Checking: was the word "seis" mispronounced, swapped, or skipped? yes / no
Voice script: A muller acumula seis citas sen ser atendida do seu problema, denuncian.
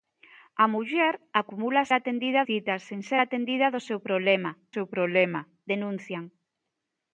yes